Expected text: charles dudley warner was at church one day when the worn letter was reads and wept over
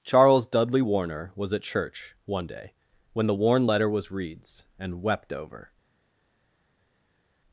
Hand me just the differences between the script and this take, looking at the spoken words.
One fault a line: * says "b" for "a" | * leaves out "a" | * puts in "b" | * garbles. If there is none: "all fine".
all fine